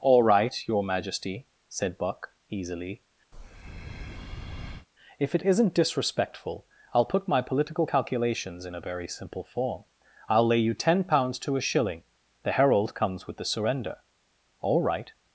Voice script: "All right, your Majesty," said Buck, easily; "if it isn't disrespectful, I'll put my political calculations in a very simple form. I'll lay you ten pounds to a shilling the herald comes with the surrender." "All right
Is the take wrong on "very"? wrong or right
right